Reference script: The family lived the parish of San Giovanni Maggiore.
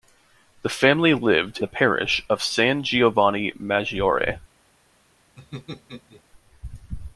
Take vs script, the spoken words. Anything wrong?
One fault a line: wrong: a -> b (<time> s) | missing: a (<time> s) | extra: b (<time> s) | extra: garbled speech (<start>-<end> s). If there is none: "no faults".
no faults